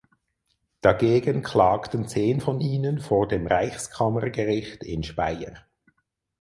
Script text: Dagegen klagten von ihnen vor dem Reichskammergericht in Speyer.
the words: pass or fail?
fail